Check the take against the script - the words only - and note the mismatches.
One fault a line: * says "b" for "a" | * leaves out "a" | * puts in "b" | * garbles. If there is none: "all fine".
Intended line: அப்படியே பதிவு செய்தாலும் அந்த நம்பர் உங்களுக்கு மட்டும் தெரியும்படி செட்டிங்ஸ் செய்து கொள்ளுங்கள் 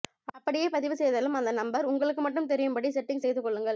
all fine